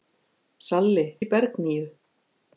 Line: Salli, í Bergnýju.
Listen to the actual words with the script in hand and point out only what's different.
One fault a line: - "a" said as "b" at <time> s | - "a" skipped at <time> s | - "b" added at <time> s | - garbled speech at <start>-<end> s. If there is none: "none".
none